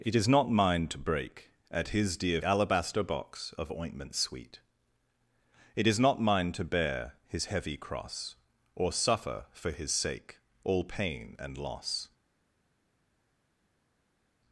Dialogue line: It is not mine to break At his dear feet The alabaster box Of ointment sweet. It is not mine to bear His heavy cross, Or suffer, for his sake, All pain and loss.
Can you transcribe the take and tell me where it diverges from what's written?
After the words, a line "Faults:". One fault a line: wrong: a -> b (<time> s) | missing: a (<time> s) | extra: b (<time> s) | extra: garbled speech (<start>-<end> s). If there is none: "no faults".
It is not mine to break At his dear alabaster box Of ointment sweet. It is not mine to bear His heavy cross, Or suffer, for his sake, All pain and loss.
Faults:
missing: feet The (2.4 s)